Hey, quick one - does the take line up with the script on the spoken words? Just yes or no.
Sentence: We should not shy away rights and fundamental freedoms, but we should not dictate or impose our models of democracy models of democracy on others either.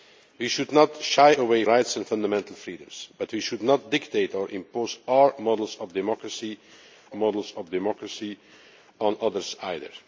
yes